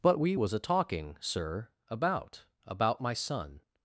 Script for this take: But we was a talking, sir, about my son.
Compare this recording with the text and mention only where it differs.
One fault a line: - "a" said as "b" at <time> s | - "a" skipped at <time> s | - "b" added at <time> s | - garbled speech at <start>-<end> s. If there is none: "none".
- "about" added at 2.7 s